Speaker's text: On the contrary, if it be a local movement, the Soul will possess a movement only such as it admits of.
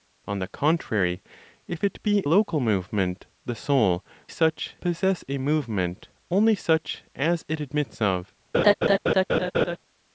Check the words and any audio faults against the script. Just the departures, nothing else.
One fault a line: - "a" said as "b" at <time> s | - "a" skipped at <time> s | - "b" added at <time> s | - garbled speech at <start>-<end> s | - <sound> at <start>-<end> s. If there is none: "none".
- "a" skipped at 2.2 s
- "will" said as "such" at 4.3 s
- laugh at 8.5-9.8 s